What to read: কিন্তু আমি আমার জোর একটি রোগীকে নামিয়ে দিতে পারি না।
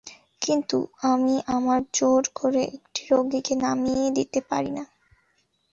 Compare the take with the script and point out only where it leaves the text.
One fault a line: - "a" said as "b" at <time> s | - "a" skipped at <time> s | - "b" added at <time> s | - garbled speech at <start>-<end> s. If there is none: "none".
- "করে" added at 2.3 s